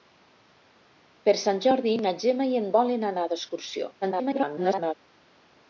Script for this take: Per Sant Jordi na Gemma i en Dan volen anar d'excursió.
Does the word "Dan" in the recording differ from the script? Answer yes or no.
yes